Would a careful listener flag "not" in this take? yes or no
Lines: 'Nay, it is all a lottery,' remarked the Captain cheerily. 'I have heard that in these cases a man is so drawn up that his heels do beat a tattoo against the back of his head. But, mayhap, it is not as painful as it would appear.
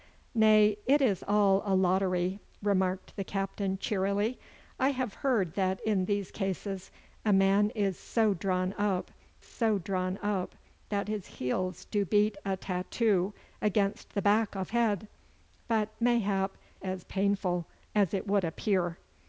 yes